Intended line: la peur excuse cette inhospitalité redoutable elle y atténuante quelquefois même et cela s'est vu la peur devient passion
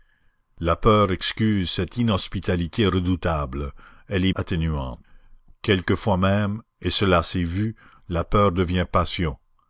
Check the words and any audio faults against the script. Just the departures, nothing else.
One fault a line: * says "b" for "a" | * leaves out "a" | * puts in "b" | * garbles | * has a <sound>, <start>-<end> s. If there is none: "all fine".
all fine